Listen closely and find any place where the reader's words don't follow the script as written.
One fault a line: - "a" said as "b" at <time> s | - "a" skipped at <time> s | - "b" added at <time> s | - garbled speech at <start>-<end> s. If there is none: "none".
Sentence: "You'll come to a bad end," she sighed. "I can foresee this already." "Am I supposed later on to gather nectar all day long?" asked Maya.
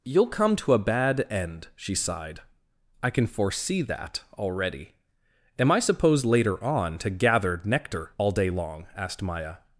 - "this" said as "that" at 3.8 s